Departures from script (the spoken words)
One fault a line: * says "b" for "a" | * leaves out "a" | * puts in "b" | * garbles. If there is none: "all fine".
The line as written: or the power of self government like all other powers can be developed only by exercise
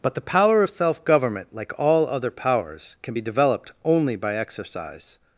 * says "but" for "or"